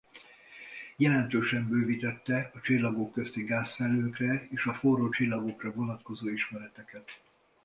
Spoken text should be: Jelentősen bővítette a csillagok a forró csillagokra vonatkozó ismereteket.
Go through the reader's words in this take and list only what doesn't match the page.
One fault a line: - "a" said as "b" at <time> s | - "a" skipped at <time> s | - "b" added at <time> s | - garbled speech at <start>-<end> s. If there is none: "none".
- "közti gázfelhőkre és" added at 3.1 s